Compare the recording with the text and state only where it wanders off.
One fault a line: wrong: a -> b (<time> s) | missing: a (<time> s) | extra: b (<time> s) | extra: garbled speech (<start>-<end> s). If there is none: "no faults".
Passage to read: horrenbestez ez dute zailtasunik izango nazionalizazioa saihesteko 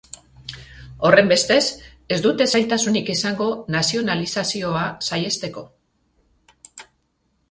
no faults